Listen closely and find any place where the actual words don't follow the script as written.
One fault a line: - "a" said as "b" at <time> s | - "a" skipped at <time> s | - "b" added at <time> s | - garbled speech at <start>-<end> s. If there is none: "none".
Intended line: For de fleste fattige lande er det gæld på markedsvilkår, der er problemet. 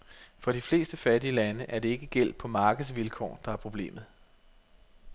- "ikke" added at 1.9 s